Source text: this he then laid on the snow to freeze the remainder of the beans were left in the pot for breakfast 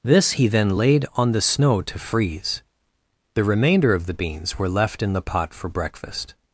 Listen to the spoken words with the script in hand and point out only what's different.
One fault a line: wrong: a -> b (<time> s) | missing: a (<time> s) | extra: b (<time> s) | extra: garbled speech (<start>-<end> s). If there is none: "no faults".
no faults